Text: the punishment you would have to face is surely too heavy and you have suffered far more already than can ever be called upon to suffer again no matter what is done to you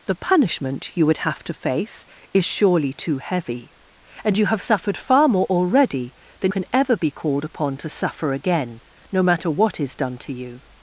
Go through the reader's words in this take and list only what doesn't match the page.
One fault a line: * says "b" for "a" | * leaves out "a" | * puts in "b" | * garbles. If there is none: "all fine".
all fine